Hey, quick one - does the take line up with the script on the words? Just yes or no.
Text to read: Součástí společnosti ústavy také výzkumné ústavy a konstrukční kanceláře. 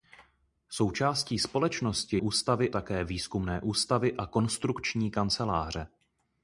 yes